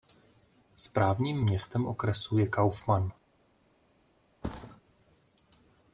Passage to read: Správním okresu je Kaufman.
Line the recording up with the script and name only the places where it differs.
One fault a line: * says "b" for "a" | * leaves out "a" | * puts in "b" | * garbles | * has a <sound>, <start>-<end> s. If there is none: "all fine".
* puts in "městem"
* has a thud, 4.4-4.8 s